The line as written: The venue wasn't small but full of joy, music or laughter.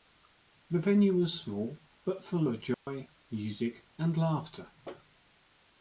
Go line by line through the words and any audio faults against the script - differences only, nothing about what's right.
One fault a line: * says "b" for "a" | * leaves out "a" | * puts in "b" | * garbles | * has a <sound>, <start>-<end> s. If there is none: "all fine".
* says "was" for "wasn't"
* has a dropout, 2.7-2.9 s
* says "and" for "or"